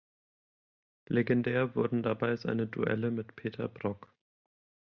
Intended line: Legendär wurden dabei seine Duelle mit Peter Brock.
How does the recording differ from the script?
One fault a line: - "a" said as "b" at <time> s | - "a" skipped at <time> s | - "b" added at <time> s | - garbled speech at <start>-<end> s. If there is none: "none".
none